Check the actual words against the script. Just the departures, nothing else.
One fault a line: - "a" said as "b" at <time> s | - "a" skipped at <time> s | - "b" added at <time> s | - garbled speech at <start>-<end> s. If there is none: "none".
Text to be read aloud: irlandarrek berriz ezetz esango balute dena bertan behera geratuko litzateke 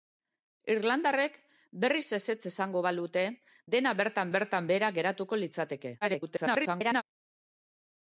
- "bertan" added at 4.4 s
- garbled speech at 6.0-7.0 s